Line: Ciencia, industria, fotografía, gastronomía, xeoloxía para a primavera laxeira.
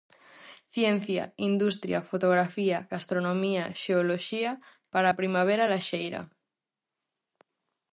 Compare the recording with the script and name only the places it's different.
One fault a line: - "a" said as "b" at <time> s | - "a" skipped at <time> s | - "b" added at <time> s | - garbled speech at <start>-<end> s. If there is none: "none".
none